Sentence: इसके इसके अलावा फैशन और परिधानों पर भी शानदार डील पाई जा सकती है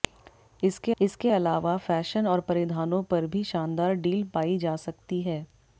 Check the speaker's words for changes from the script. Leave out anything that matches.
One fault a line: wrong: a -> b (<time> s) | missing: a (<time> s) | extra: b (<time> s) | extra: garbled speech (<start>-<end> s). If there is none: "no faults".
no faults